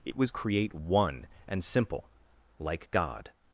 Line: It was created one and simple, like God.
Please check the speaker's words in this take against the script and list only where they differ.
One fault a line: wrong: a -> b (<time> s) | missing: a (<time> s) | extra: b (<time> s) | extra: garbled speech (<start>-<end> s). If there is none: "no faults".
wrong: created -> create (0.3 s)